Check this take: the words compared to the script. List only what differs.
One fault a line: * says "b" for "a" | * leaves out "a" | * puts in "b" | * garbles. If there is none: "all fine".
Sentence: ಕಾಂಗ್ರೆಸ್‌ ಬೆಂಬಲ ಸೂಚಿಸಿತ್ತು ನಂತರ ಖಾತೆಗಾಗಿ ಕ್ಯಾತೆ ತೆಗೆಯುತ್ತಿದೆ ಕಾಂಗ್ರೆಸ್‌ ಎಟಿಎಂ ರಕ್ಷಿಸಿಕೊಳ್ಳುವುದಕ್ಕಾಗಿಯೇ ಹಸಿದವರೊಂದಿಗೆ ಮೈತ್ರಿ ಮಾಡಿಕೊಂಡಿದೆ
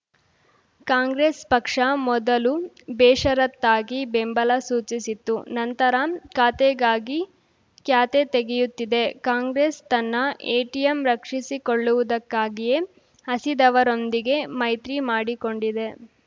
* puts in "ಪಕ್ಷ ಮೊದಲು ಬೇಷರತ್ತಾಗಿ"
* puts in "ತನ್ನ"